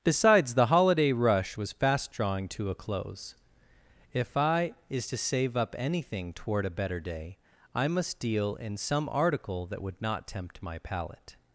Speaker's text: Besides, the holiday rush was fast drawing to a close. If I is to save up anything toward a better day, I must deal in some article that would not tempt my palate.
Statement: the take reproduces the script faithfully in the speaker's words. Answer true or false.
true